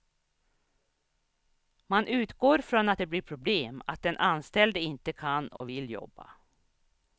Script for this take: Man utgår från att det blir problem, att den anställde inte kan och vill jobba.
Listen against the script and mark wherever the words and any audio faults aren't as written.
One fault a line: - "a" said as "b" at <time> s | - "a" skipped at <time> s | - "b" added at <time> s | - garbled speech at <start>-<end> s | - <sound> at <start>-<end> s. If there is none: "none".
- dropout at 5.6-5.6 s